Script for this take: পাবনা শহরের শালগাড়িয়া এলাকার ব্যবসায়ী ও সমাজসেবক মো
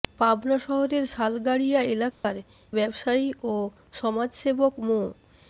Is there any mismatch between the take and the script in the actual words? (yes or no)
no